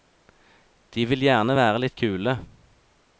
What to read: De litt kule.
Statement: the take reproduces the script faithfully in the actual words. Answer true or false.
false